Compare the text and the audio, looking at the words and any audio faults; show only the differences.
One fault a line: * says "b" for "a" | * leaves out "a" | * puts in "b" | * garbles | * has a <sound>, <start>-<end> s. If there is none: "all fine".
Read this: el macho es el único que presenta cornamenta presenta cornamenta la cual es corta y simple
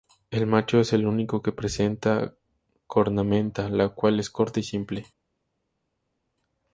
* leaves out "presenta cornamenta"